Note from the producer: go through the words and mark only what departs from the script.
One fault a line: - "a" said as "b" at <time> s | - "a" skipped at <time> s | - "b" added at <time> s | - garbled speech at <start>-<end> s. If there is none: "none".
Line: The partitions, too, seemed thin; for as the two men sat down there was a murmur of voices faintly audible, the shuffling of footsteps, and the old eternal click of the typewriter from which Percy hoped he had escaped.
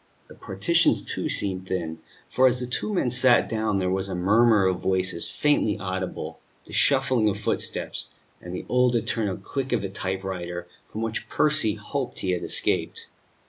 none